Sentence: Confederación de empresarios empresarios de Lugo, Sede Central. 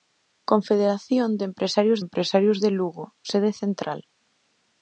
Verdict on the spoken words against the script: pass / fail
pass